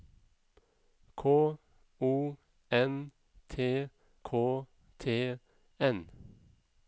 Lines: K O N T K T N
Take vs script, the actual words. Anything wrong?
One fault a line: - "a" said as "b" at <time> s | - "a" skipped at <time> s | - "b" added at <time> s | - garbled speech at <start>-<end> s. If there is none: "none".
none